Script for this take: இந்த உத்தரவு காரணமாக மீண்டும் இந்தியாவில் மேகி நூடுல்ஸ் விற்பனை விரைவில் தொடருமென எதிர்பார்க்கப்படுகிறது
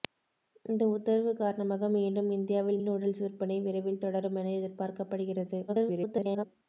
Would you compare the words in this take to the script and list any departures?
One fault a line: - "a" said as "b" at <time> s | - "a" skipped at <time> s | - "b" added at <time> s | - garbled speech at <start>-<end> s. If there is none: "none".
- "மேகி" skipped at 2.8 s
- garbled speech at 5.7-6.5 s